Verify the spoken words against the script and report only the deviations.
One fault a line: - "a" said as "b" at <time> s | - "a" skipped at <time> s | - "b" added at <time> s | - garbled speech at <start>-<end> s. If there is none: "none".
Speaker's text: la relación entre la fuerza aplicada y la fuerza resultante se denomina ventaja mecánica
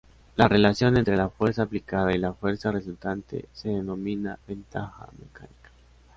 none